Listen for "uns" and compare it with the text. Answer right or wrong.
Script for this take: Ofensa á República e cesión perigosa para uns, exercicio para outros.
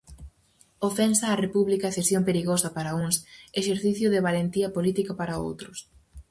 right